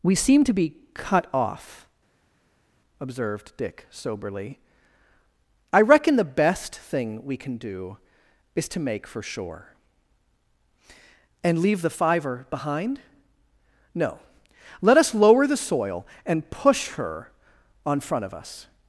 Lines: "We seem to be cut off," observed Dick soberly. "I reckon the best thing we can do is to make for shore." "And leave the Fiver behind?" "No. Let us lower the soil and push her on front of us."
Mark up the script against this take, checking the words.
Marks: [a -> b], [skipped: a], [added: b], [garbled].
"We seem to be cut off," observed Dick soberly. "I reckon the best thing we can do is to make for shore." "And leave the Fiver behind?" "No. Let us lower the soil and push her on front of us."